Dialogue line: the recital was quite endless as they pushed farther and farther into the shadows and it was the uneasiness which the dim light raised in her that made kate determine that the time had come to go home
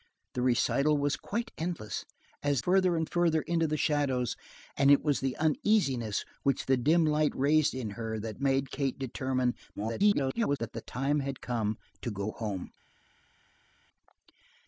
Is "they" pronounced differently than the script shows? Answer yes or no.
yes